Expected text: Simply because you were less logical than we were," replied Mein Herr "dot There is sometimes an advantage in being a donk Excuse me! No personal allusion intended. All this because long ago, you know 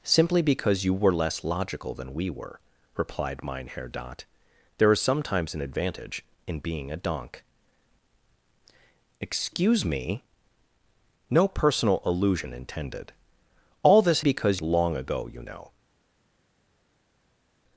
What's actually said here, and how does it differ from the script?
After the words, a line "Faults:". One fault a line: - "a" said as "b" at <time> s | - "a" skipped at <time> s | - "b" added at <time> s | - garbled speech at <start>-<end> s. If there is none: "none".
Simply because you were less logical than we were," replied Mein Herr "dot There is sometimes an advantage in being a donk Excuse me! No personal allusion intended. All this because long ago, you know
Faults:
none